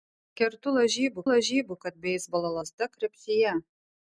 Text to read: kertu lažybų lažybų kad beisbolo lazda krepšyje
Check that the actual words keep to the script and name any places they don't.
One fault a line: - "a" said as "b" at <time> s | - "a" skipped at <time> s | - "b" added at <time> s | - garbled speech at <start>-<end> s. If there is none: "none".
none